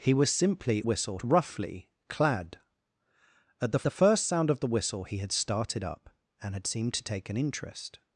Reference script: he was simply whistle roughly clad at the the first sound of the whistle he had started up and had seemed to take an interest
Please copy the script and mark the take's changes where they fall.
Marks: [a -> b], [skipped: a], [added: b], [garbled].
he was simply whistle roughly clad at the the first sound of the whistle he had started up and had seemed to take an interest